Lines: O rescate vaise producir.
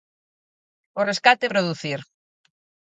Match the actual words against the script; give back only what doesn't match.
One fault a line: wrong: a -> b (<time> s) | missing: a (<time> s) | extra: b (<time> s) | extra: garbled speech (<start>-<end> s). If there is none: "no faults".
missing: vaise (1.5 s)